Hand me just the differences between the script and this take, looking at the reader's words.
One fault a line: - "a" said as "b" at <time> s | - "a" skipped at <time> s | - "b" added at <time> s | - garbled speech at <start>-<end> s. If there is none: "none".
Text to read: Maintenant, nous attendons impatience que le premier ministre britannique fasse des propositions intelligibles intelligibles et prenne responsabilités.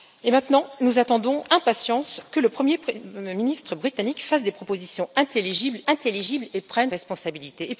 none